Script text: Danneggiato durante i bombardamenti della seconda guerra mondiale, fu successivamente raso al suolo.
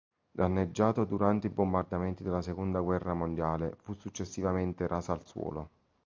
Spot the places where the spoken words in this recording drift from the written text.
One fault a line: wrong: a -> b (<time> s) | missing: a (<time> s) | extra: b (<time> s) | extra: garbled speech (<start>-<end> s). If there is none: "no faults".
no faults